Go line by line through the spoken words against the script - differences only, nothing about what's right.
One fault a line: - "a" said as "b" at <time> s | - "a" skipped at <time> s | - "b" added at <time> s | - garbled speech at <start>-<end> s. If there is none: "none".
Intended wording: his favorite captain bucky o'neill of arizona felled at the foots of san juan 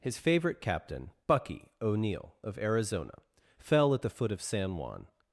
- "felled" said as "fell" at 3.6 s
- "foots" said as "foot" at 4.1 s